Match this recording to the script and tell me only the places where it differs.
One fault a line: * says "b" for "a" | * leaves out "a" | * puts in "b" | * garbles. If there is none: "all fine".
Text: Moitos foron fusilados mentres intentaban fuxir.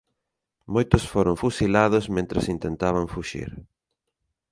all fine